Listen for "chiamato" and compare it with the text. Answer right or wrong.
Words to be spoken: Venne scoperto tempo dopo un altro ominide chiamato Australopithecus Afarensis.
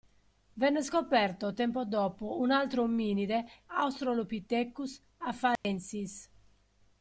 wrong